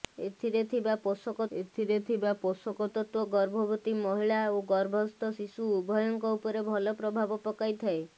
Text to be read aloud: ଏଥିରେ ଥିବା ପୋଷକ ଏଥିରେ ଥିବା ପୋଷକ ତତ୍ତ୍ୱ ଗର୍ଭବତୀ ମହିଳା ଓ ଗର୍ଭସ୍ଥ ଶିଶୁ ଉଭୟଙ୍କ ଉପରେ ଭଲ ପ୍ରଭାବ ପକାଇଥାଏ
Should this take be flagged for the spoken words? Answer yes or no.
no